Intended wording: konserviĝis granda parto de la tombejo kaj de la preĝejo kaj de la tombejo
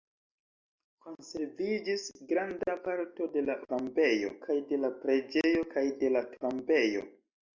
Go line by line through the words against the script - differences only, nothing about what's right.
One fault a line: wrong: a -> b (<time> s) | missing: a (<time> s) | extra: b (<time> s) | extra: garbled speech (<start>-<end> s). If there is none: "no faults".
no faults